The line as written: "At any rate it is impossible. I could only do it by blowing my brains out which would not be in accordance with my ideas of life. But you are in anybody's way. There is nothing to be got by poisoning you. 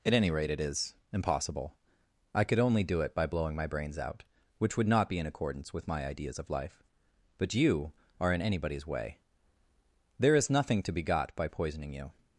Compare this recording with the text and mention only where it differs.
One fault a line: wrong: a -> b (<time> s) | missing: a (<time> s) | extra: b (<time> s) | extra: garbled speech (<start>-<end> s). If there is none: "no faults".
no faults